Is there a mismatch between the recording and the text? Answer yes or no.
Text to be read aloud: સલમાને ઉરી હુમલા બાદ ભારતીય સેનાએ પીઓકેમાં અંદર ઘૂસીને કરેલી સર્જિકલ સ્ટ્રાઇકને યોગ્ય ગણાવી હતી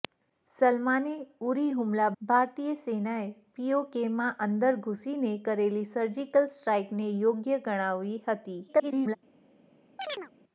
yes